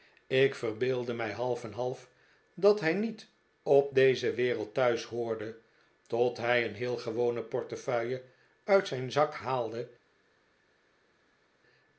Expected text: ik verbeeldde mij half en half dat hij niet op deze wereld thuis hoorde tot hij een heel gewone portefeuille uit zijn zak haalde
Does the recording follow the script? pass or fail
pass